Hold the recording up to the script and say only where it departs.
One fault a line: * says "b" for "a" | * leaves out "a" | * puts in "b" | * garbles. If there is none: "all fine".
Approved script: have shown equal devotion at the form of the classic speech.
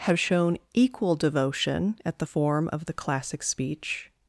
all fine